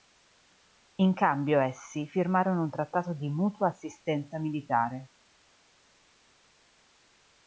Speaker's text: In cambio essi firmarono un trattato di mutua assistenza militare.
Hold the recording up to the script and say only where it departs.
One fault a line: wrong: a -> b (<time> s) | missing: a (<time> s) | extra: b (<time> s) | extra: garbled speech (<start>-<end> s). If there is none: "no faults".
no faults